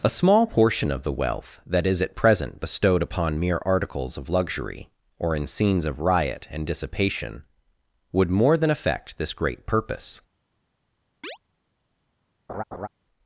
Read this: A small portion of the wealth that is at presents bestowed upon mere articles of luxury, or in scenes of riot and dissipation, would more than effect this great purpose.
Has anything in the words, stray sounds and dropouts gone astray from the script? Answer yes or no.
yes